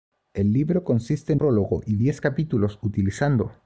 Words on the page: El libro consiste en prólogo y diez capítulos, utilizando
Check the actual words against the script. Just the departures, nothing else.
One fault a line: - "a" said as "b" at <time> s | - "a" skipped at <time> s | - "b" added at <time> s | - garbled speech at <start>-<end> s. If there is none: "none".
none